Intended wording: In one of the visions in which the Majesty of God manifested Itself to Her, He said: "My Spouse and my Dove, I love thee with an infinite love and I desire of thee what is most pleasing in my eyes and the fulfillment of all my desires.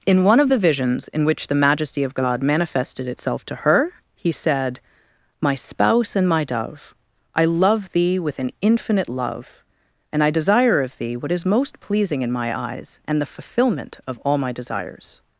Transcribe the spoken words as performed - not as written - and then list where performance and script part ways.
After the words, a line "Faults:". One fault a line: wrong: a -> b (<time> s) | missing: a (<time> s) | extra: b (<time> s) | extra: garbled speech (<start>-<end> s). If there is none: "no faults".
In one of the visions in which the Majesty of God manifested Itself to Her, He said: "My Spouse and my Dove, I love thee with an infinite love and I desire of thee what is most pleasing in my eyes and the fulfillment of all my desires.
Faults:
no faults